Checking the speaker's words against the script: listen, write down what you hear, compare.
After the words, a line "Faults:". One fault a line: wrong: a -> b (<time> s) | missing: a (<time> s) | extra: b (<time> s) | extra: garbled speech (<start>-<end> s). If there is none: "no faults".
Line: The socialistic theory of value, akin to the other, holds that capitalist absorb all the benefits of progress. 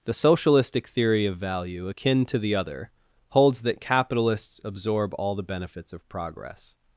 The socialistic theory of value, akin to the other, holds that capitalists absorb all the benefits of progress.
Faults:
wrong: capitalist -> capitalists (3.8 s)